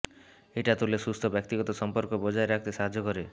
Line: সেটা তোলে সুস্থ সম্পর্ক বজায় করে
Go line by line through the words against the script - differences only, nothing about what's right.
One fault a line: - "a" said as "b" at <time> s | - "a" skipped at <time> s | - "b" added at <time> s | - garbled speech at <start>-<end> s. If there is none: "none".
- "সেটা" said as "এটা" at 0.6 s
- "ব্যক্তিগত" added at 1.3 s
- "রাখতে সাহায্য" added at 2.5 s